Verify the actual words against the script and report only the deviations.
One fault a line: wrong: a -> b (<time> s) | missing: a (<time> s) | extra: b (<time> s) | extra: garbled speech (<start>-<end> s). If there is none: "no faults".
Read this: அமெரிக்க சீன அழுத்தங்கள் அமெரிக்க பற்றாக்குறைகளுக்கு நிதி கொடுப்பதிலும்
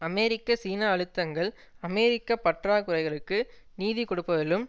no faults